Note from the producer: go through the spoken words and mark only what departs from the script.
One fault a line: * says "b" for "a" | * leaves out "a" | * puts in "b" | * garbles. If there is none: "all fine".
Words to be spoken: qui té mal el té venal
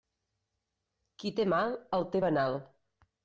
all fine